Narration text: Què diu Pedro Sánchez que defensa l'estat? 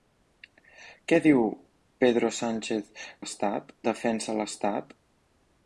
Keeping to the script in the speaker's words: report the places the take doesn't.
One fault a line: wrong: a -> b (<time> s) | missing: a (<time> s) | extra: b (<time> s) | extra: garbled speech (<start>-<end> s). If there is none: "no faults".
wrong: que -> l'estat (3.2 s)